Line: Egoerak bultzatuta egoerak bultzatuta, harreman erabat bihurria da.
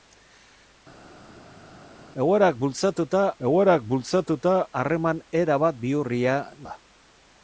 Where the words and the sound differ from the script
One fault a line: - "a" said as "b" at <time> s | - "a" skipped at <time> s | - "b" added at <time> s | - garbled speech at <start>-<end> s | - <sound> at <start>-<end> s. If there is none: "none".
none